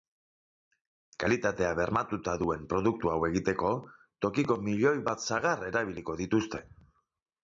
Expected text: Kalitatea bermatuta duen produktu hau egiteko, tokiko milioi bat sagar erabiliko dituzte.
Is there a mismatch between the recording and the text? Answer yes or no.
no